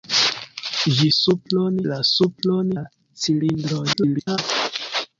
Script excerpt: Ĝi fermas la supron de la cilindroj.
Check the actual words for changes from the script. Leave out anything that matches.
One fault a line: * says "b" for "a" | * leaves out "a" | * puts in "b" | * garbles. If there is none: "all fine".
* says "supron" for "fermas"
* leaves out "de"
* garbles